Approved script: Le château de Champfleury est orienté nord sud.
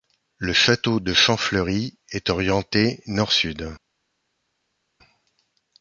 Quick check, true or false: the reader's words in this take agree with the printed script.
true